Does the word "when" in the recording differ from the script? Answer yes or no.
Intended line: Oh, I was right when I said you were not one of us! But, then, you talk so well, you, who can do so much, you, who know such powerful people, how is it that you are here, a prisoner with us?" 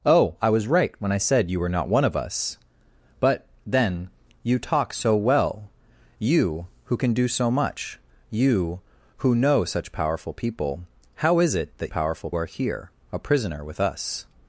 no